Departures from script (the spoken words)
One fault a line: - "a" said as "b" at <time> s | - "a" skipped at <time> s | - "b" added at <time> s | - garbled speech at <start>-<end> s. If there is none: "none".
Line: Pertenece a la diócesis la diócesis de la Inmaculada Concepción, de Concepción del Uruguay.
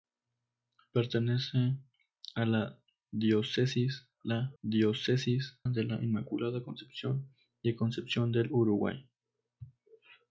none